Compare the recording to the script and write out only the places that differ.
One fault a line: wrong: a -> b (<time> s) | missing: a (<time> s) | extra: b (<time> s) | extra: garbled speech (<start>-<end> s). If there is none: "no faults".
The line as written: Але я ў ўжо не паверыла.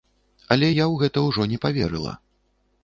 extra: гэта (1.0 s)